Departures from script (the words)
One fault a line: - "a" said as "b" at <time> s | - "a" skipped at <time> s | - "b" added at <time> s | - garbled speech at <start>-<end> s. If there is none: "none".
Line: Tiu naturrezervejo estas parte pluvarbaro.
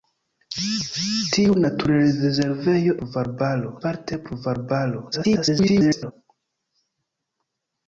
- "estas" said as "pluvarbaro" at 3.0 s
- garbled speech at 5.1-6.1 s